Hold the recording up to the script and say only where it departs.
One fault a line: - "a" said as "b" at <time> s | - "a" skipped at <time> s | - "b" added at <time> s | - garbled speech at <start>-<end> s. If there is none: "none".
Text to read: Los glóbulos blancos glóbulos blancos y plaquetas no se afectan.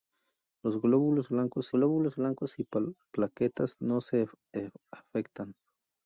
none